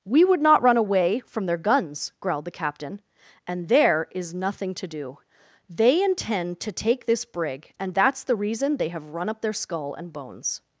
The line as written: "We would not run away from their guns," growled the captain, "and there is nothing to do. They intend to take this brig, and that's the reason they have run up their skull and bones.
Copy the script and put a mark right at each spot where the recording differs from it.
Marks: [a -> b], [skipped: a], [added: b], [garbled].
"We would not run away from their guns," growled the captain, "and there is nothing to do. They intend to take this brig, and that's the reason they have run up their skull and bones.